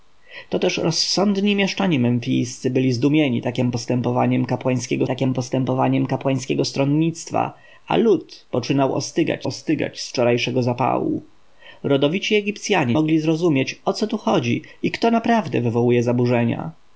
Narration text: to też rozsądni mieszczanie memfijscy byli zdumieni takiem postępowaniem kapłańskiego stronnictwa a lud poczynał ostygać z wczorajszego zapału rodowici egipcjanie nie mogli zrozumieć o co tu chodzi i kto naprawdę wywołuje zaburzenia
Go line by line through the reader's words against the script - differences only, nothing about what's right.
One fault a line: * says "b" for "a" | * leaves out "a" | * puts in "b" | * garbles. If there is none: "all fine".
* puts in "takiem postępowaniem kapłańskiego"
* puts in "ostygać"
* leaves out "nie"